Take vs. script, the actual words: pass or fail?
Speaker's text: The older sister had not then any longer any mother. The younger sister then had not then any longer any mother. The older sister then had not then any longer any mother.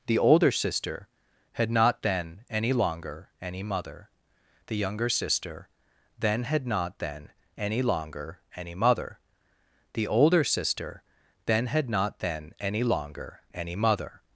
pass